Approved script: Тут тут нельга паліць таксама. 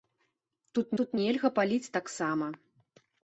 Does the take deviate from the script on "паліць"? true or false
false